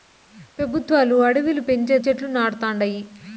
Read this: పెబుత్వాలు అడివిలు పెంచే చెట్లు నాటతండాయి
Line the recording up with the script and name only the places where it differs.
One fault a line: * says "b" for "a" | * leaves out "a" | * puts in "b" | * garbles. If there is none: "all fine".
all fine